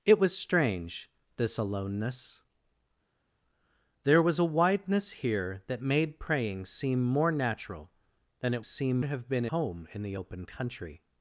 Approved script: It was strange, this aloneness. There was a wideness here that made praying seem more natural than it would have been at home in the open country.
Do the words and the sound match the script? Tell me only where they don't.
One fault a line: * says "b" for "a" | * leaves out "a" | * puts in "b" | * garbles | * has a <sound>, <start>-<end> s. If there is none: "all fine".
* says "seem" for "would"
* leaves out "at"